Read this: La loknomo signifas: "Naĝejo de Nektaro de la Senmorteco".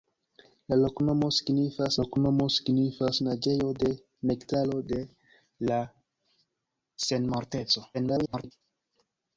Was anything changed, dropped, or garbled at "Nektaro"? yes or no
no